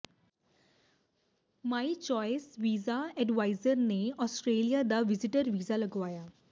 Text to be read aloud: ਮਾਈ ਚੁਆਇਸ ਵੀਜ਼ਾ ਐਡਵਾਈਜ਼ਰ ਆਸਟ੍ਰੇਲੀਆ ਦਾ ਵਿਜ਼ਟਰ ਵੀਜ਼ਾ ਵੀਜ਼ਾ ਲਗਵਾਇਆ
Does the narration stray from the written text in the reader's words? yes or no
yes